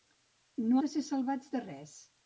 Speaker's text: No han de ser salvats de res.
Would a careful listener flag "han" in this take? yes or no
yes